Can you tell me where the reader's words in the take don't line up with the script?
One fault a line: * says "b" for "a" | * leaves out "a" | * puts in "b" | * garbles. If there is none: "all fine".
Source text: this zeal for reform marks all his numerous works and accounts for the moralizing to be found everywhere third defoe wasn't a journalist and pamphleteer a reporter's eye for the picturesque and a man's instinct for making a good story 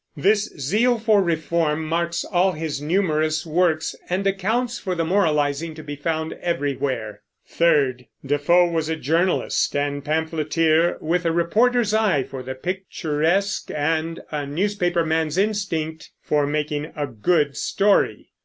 * says "was" for "wasn't"
* puts in "with"
* puts in "newspaper"